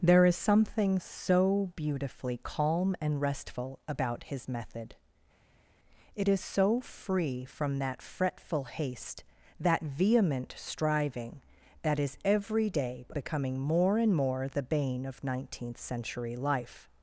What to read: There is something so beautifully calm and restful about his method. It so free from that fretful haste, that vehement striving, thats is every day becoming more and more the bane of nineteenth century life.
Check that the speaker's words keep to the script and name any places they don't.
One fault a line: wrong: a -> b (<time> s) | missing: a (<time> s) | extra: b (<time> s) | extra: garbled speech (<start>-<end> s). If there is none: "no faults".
extra: is (6.3 s)
wrong: thats -> that (11.8 s)